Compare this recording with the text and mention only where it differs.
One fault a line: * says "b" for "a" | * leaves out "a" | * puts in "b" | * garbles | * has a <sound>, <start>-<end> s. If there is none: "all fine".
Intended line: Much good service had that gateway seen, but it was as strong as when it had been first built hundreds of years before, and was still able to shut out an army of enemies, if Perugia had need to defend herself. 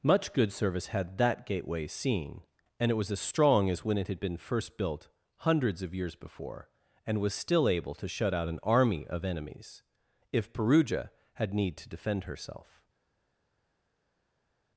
* says "and" for "but"